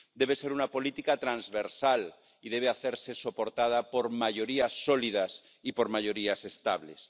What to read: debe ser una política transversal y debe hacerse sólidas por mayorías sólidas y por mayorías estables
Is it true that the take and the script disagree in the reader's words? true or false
true